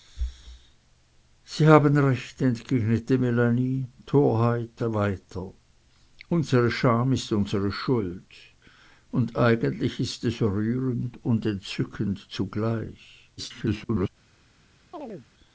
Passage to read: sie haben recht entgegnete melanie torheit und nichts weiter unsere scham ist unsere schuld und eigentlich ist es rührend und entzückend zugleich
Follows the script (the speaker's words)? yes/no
no